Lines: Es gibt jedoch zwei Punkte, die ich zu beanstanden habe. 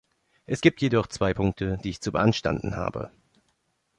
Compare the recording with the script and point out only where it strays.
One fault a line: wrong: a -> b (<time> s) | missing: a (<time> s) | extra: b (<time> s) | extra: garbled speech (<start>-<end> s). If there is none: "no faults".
no faults